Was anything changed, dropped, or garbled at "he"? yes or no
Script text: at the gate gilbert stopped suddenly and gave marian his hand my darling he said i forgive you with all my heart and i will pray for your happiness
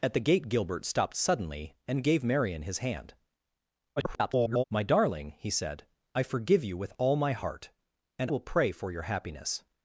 no